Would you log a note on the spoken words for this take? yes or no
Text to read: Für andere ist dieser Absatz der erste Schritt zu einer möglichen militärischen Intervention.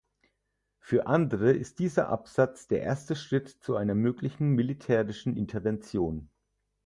no